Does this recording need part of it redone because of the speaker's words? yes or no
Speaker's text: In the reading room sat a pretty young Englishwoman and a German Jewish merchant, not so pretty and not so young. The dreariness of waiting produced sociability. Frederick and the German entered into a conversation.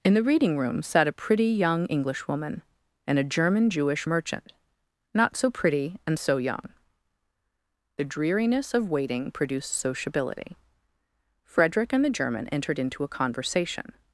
yes